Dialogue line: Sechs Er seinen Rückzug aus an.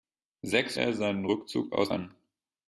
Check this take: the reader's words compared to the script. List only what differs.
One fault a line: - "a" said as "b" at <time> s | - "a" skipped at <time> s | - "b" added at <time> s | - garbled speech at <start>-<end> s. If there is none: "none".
none